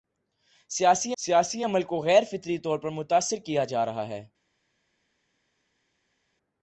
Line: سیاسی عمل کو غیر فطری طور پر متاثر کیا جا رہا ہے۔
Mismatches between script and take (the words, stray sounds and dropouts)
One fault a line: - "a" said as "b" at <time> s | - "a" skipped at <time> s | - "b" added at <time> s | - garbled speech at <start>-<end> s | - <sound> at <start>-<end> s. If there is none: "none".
- "سیاسی" added at 1.2 s